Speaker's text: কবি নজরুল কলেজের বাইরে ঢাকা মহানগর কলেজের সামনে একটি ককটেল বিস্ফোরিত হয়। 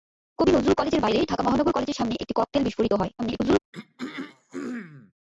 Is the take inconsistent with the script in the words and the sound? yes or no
yes